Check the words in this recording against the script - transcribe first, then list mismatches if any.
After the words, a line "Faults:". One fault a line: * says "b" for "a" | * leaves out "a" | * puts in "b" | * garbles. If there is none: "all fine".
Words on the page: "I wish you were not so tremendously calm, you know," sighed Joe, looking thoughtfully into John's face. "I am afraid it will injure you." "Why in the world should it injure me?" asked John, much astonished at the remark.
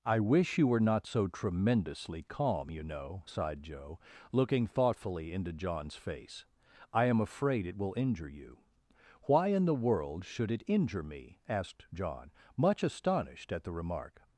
"I wish you were not so tremendously calm, you know," sighed Joe, looking thoughtfully into John's face. "I am afraid it will injure you." "Why in the world should it injure me?" asked John, much astonished at the remark.
Faults:
all fine